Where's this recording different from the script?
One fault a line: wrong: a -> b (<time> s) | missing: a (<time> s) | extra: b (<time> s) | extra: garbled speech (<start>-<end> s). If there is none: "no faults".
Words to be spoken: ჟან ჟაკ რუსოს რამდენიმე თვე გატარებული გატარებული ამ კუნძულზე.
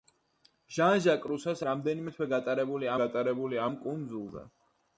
no faults